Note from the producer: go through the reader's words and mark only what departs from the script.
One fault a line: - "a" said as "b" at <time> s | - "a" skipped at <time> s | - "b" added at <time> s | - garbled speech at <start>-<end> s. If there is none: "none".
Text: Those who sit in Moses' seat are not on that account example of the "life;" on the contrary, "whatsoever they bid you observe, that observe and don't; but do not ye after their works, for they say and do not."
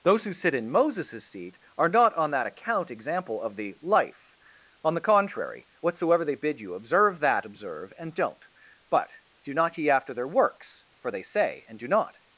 none